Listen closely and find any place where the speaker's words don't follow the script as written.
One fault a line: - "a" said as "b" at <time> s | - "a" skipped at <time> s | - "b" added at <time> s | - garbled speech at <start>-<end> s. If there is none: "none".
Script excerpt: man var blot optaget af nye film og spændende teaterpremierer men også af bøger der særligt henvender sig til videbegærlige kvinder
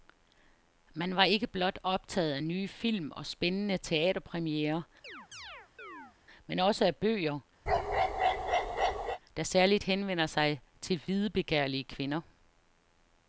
- "ikke" added at 1.2 s